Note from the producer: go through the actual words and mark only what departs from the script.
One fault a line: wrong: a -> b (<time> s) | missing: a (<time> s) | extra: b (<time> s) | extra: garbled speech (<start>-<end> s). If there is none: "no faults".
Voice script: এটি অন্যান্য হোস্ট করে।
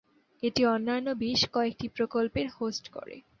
extra: বেশ কয়েকটি প্রকল্পের (1.2 s)